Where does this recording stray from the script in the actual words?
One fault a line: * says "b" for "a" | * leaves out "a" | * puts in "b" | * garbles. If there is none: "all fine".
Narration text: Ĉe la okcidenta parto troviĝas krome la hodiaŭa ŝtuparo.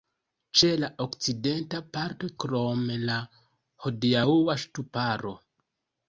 * leaves out "troviĝas"